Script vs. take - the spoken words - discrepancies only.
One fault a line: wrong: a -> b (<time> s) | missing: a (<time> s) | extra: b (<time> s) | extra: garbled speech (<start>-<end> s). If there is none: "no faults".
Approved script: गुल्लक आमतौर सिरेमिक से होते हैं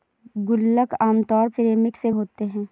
no faults